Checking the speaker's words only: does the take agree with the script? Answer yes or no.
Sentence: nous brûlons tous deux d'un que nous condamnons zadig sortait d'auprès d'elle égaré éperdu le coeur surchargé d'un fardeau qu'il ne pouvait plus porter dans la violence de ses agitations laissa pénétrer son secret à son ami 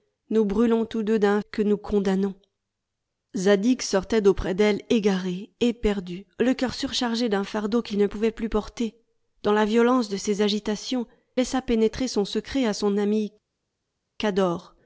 yes